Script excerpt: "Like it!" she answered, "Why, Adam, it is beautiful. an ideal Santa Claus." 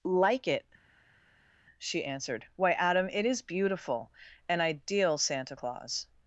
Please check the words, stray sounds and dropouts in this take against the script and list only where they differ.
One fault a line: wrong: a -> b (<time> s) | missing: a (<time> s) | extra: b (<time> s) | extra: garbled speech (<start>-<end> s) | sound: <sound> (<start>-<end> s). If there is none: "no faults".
no faults